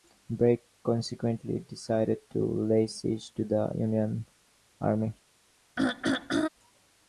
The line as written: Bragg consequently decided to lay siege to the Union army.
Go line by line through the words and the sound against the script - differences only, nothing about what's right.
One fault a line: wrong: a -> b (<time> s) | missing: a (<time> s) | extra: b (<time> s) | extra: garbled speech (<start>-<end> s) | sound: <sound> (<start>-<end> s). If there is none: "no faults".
sound: throat clearing (5.8-6.5 s)